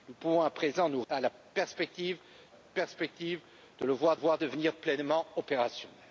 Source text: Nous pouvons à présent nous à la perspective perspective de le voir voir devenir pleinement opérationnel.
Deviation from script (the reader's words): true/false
false